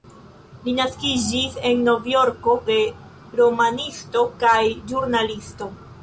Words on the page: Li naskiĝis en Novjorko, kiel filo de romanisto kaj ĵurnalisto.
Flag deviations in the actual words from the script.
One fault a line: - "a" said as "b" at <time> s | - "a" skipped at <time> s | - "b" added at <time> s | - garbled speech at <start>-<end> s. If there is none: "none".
- "kiel filo" skipped at 2.5 s